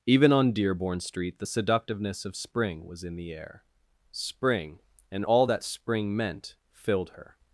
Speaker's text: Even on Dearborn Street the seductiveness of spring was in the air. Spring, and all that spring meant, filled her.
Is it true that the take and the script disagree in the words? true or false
false